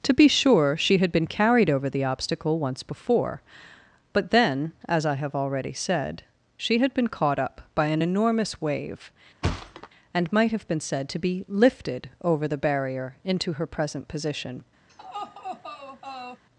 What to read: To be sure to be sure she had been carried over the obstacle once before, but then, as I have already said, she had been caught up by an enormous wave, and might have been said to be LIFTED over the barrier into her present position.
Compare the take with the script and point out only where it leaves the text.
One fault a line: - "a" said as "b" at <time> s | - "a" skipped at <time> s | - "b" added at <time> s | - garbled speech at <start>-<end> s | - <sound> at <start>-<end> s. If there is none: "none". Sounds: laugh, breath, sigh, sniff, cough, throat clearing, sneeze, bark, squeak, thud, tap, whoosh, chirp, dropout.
- "to be sure" skipped at 0.8 s
- thud at 9.4-9.9 s
- laugh at 14.9-16.4 s